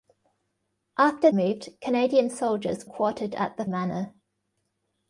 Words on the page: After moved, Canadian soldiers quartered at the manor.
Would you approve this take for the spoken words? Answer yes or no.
yes